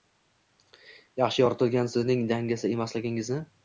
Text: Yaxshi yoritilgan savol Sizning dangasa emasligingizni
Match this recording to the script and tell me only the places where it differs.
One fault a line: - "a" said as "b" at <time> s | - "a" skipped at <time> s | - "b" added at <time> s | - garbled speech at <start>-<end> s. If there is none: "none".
- "savol" skipped at 1.9 s